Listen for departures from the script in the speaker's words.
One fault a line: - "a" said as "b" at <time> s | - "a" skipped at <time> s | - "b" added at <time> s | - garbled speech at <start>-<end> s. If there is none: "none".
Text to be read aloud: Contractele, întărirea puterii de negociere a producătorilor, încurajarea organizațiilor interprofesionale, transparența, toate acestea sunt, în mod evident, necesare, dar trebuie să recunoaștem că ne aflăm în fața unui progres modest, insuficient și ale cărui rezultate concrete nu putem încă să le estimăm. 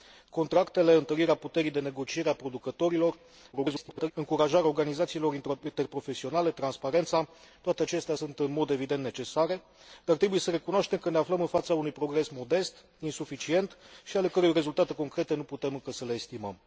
- garbled speech at 3.5-4.1 s